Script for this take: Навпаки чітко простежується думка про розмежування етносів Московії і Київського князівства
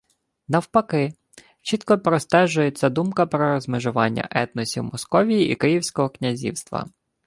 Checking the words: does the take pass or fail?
pass